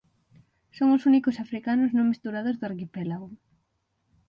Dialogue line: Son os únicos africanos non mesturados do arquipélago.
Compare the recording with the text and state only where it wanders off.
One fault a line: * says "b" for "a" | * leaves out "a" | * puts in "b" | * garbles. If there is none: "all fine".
all fine